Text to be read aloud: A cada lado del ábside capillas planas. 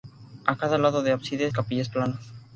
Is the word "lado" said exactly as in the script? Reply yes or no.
yes